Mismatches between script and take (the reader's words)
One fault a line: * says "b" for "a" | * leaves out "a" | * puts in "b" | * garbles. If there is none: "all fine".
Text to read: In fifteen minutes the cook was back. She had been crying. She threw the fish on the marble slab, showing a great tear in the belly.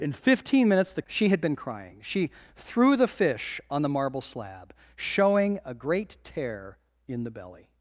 * leaves out "cook was back"